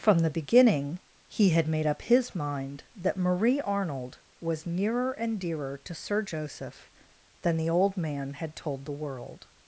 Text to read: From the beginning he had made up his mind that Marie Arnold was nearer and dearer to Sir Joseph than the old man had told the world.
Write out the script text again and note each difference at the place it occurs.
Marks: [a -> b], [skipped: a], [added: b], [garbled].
From the beginning he had made up his mind that Marie Arnold was nearer and dearer to Sir Joseph than the old man had told the world.